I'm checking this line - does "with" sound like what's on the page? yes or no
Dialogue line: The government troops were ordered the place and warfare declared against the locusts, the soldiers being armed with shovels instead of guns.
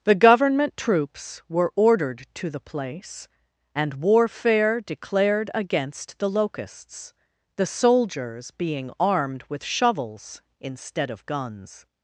yes